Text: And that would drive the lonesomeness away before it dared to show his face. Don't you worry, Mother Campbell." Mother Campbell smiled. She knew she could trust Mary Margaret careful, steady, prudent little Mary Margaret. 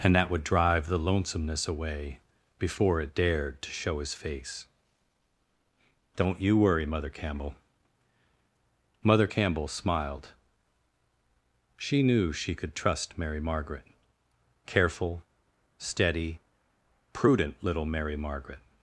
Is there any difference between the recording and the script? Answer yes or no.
no